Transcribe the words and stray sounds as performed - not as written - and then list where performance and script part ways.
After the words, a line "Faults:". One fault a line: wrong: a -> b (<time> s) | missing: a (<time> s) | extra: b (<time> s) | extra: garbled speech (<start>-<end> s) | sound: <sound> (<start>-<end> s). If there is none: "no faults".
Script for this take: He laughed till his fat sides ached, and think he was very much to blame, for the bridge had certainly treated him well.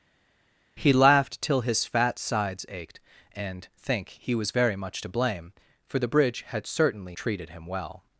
He laughed till his fat sides ached, and think he was very much to blame, for the bridge had certainly treated him well.
Faults:
no faults